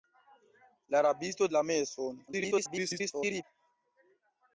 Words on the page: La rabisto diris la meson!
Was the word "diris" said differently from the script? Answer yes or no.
yes